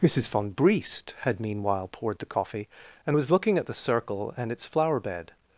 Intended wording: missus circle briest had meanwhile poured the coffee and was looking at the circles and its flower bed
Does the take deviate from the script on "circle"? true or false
true